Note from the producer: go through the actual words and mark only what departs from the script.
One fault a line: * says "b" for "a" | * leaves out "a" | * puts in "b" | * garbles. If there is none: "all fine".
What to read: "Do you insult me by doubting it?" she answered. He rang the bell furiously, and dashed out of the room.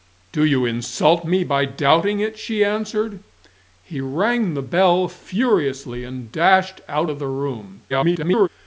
* garbles